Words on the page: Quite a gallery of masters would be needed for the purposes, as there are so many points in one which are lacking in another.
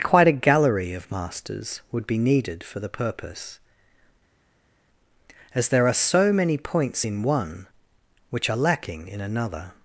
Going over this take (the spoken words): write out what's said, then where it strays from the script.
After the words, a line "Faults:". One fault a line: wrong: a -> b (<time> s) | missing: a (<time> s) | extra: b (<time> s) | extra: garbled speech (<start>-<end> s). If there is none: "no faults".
Quite a gallery of masters would be needed for the purpose, as there are so many points in one which are lacking in another.
Faults:
wrong: purposes -> purpose (2.9 s)